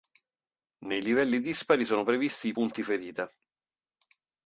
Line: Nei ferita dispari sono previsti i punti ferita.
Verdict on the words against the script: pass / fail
fail